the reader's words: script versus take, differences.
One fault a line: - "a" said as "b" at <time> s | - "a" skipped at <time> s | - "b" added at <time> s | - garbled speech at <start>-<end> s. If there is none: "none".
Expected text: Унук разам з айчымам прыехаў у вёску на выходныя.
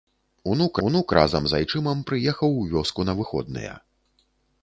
- "унук" added at 0.9 s